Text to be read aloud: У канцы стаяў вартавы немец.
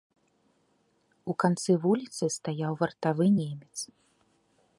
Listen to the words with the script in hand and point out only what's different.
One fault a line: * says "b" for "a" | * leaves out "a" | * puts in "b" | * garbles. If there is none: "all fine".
* puts in "вуліцы"